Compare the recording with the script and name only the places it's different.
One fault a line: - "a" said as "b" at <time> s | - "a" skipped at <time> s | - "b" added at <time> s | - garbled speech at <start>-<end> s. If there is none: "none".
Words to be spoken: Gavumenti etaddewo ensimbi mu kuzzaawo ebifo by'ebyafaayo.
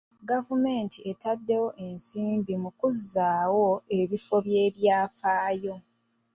none